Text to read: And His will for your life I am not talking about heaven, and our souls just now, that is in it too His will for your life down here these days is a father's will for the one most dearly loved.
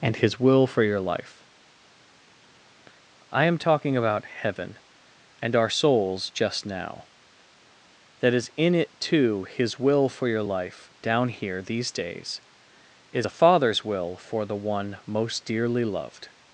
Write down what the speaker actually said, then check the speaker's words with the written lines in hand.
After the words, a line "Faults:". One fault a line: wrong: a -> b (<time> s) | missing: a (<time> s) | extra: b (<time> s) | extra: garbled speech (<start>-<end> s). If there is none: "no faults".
And His will for your life I am talking about heaven, and our souls just now, that is in it too His will for your life down here these days is a father's will for the one most dearly loved.
Faults:
missing: not (3.6 s)